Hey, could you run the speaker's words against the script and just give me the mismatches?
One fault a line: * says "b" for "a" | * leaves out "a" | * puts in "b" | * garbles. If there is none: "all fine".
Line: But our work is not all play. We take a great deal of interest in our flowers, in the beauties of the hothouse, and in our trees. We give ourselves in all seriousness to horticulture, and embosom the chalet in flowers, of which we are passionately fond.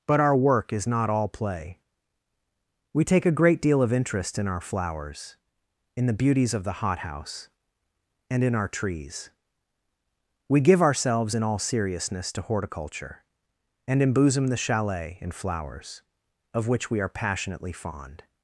all fine